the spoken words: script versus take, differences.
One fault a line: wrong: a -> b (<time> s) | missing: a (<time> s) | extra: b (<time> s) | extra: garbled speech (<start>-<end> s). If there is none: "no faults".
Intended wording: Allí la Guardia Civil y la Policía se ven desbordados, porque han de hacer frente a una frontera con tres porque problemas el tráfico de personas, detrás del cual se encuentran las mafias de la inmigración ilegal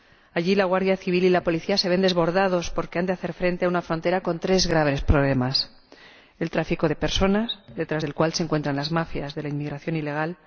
wrong: porque -> graves (4.7 s)